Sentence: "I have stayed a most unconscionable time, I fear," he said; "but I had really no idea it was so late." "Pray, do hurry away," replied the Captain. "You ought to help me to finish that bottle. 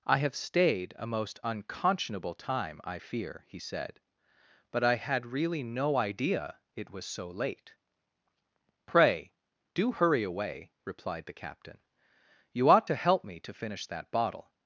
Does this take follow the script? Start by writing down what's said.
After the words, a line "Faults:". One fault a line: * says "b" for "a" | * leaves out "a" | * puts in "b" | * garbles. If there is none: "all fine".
"I have stayed a most unconscionable time, I fear," he said; "but I had really no idea it was so late." "Pray, do hurry away," replied the Captain. "You ought to help me to finish that bottle.
Faults:
all fine